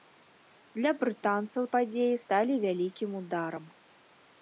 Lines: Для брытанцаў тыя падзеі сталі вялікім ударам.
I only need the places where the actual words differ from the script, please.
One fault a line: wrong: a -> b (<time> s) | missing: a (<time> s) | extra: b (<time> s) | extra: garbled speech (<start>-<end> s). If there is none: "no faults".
missing: тыя (1.7 s)